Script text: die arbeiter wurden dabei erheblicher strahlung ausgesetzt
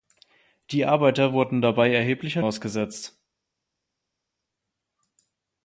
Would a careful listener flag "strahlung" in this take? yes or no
yes